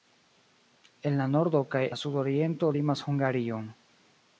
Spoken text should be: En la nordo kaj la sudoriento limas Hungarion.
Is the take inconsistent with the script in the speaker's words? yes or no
no